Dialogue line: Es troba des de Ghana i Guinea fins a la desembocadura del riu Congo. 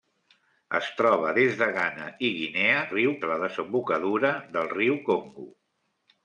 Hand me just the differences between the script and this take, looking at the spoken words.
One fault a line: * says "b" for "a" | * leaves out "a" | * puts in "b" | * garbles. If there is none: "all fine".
* says "riu" for "fins"